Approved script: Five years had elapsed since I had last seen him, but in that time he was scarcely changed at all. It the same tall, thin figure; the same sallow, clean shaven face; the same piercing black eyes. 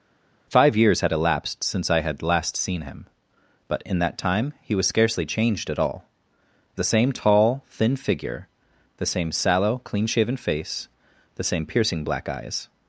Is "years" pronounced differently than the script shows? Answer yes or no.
no